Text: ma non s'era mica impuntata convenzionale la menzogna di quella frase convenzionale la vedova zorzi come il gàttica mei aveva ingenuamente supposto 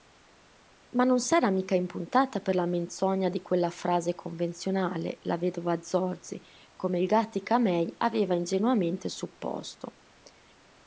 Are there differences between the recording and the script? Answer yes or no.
yes